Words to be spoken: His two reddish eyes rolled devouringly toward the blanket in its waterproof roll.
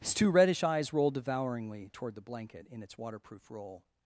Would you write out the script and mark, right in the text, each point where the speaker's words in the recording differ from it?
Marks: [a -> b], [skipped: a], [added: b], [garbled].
His two reddish eyes rolled devouringly toward the blanket in its waterproof roll.